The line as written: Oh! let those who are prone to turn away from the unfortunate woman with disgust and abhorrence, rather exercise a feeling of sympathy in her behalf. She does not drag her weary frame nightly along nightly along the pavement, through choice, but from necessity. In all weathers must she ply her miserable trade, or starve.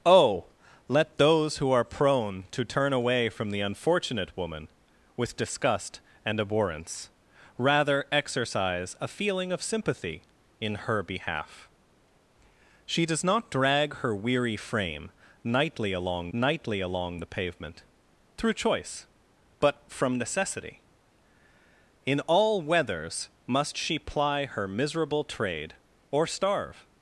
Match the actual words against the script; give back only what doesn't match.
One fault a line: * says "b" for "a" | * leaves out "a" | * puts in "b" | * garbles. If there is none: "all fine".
all fine